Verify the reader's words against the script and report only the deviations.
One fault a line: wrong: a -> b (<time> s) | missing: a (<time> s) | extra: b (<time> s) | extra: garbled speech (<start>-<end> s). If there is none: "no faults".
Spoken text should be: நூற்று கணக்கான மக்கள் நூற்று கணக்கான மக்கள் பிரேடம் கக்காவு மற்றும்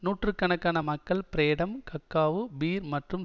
missing: நூற்று கணக்கான மக்கள் (1.2 s)
extra: பீர் (2.6 s)